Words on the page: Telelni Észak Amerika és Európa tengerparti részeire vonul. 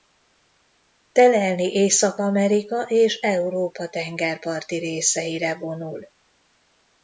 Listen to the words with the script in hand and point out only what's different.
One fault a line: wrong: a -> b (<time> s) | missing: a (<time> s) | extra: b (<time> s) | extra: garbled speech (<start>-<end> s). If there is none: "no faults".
no faults